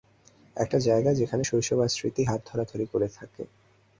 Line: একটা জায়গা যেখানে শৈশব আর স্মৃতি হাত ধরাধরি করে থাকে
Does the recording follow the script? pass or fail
pass